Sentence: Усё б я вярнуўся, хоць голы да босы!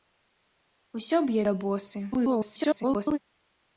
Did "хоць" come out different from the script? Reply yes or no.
yes